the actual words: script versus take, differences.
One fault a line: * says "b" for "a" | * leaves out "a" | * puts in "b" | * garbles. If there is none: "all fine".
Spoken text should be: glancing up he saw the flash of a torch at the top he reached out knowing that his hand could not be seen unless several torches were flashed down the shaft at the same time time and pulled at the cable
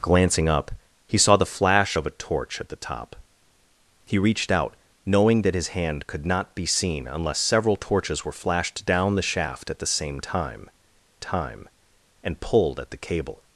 all fine